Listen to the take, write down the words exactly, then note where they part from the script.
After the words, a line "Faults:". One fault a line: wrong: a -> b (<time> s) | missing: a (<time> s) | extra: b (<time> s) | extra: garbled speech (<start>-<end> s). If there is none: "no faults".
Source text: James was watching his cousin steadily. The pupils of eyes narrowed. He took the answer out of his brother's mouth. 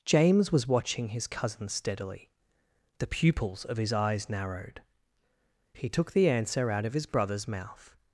James was watching his cousin steadily. The pupils of his eyes narrowed. He took the answer out of his brother's mouth.
Faults:
extra: his (3.8 s)